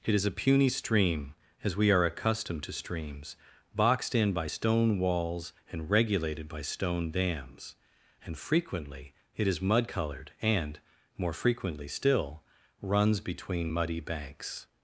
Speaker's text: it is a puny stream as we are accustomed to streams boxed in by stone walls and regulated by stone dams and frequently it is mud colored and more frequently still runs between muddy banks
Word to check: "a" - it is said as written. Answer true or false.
true